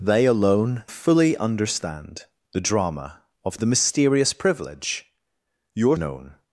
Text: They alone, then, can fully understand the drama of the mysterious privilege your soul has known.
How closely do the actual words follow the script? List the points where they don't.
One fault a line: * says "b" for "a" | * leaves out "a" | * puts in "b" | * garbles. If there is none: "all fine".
* leaves out "then can"
* leaves out "soul has"